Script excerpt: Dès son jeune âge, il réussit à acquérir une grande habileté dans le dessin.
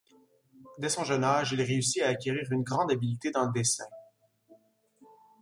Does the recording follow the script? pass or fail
pass